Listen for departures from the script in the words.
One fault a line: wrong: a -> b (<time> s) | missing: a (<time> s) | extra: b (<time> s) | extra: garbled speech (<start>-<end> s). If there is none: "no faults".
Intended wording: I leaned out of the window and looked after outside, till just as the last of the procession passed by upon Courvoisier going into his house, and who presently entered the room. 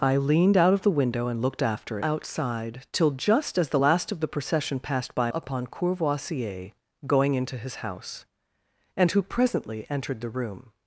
no faults